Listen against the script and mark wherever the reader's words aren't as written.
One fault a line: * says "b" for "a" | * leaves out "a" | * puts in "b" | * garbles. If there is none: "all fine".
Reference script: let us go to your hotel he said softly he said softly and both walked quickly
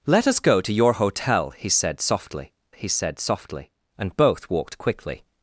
all fine